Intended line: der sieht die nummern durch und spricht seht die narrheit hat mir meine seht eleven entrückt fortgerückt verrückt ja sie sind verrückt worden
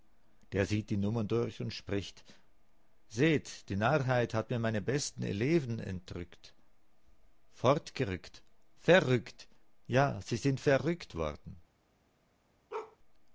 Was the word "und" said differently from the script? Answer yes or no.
no